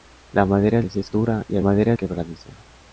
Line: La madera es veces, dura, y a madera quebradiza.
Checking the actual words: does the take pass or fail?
pass